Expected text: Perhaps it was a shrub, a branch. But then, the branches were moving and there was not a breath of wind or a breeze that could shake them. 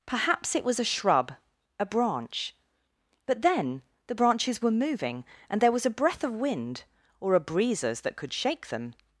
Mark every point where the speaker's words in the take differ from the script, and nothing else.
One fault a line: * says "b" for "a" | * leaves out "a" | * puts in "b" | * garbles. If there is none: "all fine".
* leaves out "not"
* says "breezes" for "breeze"